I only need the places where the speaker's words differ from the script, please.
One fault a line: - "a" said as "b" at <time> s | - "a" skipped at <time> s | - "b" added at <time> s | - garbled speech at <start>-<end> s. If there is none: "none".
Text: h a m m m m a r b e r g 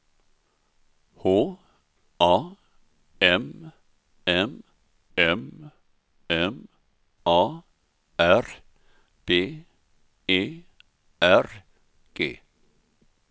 none